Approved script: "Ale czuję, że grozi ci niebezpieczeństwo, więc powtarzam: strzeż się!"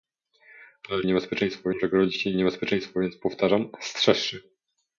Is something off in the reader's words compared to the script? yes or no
yes